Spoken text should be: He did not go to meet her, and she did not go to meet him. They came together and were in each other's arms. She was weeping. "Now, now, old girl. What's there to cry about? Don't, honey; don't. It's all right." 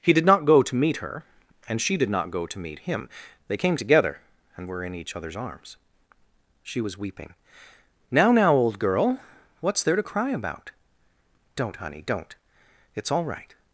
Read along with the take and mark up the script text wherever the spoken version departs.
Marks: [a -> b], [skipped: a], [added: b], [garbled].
He did not go to meet her, and she did not go to meet him. They came together and were in each other's arms. She was weeping. "Now, now, old girl. What's there to cry about? Don't, honey; don't. It's all right."